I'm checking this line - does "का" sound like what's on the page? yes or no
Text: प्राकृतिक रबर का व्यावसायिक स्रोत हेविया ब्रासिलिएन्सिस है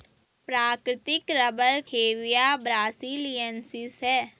no